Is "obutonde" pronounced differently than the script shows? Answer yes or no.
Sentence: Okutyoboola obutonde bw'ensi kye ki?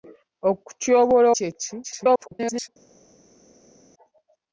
yes